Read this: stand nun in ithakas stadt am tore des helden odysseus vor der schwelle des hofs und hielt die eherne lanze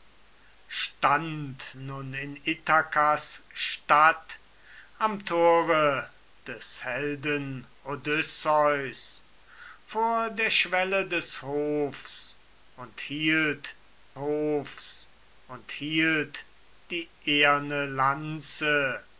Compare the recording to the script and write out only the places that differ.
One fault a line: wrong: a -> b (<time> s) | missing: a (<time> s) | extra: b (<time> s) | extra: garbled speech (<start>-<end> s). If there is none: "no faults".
extra: hofs und hielt (14.2 s)